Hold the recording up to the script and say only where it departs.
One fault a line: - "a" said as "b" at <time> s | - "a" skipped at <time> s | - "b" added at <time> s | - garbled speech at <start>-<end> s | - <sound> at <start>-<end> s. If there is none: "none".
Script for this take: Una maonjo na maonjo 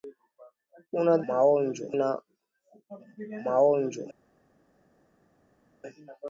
none